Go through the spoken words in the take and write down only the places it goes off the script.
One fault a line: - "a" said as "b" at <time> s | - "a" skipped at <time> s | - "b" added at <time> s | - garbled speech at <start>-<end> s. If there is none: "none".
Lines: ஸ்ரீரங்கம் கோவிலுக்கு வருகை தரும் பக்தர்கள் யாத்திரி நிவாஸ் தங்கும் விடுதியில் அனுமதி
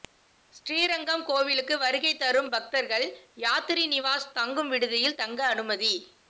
- "தங்க" added at 5.2 s